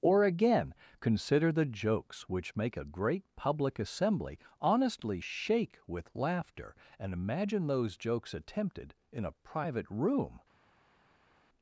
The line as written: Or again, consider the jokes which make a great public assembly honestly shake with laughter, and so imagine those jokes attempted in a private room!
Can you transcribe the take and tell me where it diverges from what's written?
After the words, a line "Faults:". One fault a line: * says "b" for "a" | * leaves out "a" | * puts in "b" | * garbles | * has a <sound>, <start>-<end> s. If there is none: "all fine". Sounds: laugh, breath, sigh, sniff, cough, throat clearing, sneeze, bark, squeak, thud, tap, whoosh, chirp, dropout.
Or again, consider the jokes which make a great public assembly honestly shake with laughter, and imagine those jokes attempted in a private room!
Faults:
* leaves out "so"